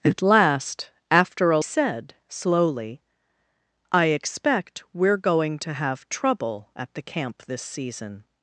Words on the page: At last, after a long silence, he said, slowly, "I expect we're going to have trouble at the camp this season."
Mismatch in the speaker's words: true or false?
true